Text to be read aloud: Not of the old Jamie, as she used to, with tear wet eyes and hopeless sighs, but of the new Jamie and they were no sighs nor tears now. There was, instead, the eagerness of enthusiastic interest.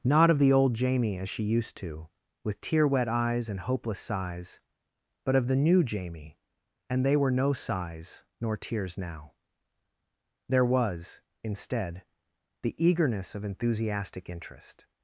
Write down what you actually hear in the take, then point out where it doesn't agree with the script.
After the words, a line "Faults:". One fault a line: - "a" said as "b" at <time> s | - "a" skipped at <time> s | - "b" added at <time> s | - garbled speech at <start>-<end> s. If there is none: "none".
Not of the old Jamie, as she used to, with tear wet eyes and hopeless sighs, but of the new Jamie and they were no sighs nor tears now. There was, instead, the eagerness of enthusiastic interest.
Faults:
none